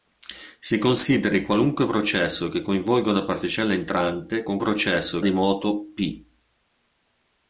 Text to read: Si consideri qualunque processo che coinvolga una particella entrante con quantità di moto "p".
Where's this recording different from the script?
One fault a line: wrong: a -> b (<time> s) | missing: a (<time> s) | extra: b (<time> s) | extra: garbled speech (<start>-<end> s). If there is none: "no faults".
wrong: quantità -> processo (4.6 s)